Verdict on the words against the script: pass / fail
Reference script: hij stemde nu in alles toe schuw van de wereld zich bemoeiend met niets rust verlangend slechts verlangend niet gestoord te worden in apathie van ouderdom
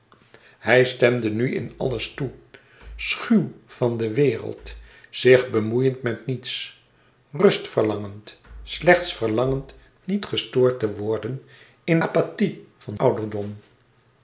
pass